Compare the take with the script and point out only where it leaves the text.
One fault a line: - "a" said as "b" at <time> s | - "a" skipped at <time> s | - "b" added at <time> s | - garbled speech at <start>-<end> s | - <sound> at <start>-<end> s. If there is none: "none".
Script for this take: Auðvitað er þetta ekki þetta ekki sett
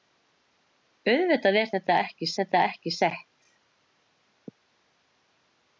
none